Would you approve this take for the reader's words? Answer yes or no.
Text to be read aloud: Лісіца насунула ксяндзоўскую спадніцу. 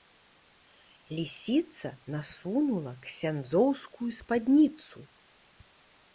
yes